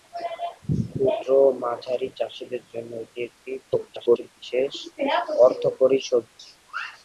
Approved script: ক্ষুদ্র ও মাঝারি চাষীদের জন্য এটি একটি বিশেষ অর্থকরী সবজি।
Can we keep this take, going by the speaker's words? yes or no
no